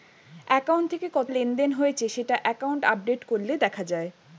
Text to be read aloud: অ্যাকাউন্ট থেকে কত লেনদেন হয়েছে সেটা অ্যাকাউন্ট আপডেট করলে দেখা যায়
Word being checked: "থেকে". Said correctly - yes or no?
yes